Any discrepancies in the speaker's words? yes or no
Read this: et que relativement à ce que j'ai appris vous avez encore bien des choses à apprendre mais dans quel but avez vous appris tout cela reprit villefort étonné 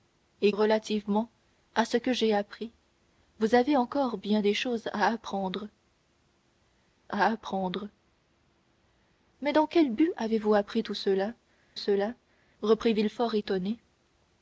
yes